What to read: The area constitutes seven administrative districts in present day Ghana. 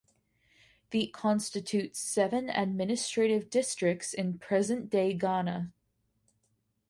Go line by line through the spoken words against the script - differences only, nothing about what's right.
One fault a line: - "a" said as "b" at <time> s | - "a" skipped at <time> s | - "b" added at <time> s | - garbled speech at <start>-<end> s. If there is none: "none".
- "area" skipped at 1.1 s